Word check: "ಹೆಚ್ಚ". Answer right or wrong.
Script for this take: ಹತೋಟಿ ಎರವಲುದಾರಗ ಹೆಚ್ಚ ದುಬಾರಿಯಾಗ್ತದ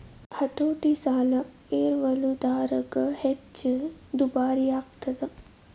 right